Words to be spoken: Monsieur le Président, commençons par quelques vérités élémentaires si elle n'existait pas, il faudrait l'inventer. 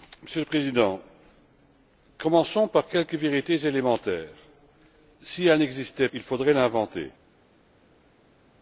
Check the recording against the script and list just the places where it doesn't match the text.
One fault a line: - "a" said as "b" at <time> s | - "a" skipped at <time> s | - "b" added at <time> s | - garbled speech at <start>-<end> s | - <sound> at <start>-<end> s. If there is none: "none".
- "pas" skipped at 6.1 s